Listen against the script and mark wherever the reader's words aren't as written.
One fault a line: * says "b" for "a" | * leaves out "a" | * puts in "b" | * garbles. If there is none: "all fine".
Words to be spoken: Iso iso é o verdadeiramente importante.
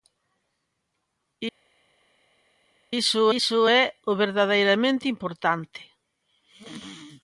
all fine